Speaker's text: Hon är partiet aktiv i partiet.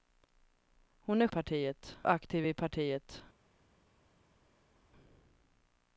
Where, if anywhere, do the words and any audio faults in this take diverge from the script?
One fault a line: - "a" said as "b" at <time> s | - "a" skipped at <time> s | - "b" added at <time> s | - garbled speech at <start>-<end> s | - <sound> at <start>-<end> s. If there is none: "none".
none